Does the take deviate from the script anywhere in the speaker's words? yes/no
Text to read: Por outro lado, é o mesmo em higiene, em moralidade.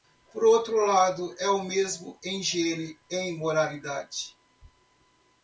no